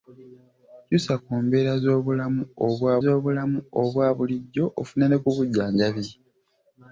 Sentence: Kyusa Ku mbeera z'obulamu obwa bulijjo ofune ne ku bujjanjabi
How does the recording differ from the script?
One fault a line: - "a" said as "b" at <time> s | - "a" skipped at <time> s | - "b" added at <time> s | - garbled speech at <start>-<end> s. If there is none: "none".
- "z'obulamu obwa" added at 3.0 s